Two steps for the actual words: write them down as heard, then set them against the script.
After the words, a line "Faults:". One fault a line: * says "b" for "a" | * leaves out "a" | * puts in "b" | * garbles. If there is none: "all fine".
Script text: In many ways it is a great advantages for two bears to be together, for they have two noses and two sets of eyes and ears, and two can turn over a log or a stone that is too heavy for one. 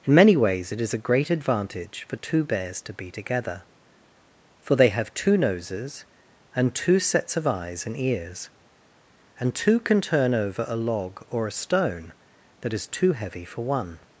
In many ways it is a great advantage for two bears to be together, for they have two noses and two sets of eyes and ears, and two can turn over a log or a stone that is too heavy for one.
Faults:
* says "advantage" for "advantages"